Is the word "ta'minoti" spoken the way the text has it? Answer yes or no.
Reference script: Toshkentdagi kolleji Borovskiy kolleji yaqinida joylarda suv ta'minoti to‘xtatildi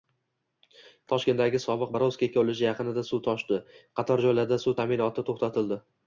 yes